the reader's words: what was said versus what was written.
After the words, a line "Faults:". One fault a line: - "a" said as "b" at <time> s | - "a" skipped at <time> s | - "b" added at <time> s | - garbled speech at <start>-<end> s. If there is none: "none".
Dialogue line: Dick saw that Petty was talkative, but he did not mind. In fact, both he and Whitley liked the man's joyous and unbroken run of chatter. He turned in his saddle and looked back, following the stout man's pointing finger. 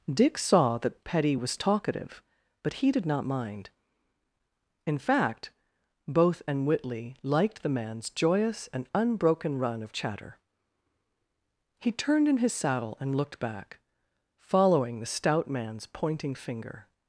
Dick saw that Petty was talkative, but he did not mind. In fact, both and Whitley liked the man's joyous and unbroken run of chatter. He turned in his saddle and looked back, following the stout man's pointing finger.
Faults:
- "he" skipped at 6.4 s